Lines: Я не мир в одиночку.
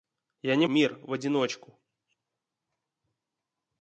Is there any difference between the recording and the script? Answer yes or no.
no